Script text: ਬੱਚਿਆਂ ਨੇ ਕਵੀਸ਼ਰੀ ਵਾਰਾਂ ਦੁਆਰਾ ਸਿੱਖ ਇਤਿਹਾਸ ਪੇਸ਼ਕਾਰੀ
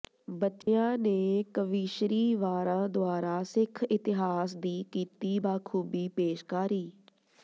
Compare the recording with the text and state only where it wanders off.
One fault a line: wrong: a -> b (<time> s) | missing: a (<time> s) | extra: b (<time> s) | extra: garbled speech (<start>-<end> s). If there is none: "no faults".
extra: ਦੀ ਕੀਤੀ ਬਾਖੂਬੀ (4.6 s)